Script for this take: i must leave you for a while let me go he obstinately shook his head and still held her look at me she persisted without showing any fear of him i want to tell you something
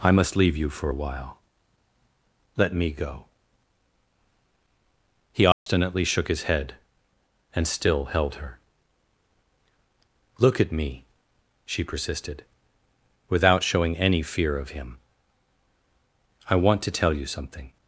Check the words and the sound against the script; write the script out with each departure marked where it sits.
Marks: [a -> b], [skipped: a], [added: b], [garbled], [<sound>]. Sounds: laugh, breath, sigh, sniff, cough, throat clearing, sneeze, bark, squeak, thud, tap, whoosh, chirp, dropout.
i must leave you for a while let me go he obstinately [dropout] shook his head and still held her look at me she persisted without showing any fear of him i want to tell you something